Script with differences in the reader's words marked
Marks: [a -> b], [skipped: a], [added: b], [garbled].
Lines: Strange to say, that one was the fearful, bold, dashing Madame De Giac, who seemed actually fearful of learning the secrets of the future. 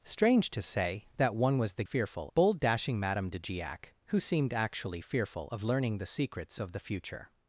Strange to say, that one was the fearful, bold, dashing Madame De Giac, who seemed actually fearful of learning the secrets of the future.